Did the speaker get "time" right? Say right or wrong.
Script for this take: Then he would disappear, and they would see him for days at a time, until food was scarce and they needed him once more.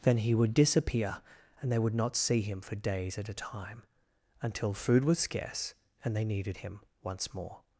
right